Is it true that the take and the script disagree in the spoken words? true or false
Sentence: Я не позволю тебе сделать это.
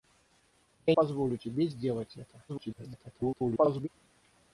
true